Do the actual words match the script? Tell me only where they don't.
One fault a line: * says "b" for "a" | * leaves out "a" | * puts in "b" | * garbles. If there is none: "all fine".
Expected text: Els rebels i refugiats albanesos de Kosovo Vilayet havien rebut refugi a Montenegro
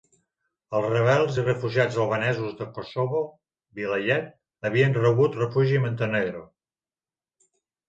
all fine